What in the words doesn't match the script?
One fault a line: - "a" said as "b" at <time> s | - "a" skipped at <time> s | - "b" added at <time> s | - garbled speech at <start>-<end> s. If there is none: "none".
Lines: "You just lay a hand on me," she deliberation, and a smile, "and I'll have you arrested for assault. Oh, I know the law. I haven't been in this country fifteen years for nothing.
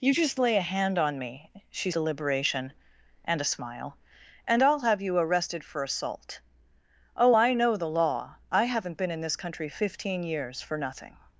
none